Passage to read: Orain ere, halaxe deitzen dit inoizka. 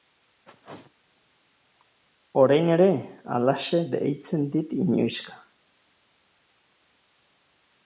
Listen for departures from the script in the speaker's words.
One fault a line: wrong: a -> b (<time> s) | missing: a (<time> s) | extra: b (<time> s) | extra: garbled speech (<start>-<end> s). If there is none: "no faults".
no faults